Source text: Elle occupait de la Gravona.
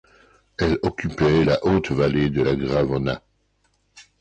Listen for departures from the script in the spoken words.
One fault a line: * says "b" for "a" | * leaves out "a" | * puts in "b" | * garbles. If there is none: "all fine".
* puts in "la haute vallée"